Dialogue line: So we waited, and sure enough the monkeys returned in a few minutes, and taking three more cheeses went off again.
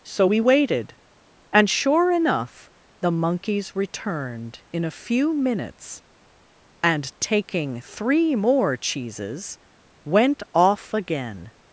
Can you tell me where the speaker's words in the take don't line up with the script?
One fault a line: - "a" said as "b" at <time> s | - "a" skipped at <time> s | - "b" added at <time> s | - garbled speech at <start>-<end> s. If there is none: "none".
none